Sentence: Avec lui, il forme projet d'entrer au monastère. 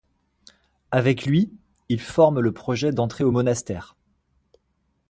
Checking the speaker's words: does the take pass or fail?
fail